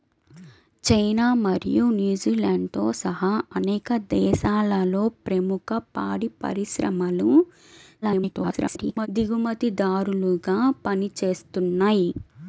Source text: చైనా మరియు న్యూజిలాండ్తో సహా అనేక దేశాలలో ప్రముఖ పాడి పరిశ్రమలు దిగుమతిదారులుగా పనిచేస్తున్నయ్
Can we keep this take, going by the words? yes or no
no